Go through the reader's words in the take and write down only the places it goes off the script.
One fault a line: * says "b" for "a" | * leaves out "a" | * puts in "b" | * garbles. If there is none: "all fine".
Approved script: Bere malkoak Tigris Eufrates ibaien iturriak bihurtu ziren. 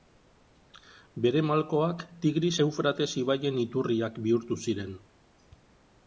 all fine